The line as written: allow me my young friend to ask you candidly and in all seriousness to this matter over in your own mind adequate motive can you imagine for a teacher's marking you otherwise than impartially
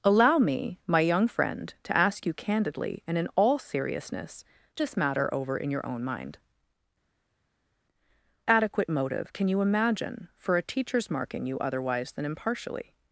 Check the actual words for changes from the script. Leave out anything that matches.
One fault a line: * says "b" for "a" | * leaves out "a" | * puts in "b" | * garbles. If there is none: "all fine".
all fine